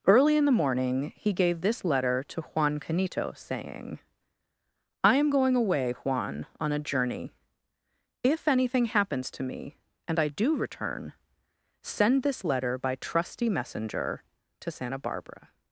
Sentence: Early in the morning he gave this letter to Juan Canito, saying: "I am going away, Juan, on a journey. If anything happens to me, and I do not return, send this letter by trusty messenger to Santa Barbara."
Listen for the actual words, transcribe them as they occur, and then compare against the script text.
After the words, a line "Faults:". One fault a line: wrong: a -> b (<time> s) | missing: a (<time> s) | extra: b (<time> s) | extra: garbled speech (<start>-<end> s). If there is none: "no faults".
Early in the morning he gave this letter to Juan Canito, saying: "I am going away, Juan, on a journey. If anything happens to me, and I do return, send this letter by trusty messenger to Santa Barbara."
Faults:
missing: not (10.6 s)